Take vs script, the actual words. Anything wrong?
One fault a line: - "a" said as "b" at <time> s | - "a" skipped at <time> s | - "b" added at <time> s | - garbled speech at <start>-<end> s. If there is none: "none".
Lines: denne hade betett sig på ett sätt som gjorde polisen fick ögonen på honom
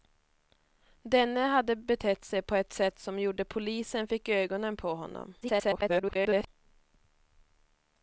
- garbled speech at 5.4-6.5 s